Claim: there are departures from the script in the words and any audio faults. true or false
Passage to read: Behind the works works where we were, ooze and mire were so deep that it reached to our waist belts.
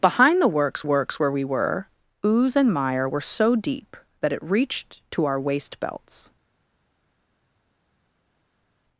false